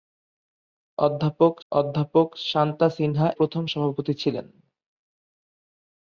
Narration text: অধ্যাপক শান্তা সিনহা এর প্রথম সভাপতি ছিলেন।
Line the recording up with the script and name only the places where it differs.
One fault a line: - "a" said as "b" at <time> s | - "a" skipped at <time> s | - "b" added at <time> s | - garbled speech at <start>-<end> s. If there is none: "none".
- "অধ্যাপক" added at 1.7 s
- "এর" skipped at 3.3 s